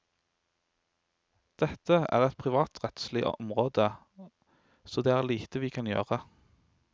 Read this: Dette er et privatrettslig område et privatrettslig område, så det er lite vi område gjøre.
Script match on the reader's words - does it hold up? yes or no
no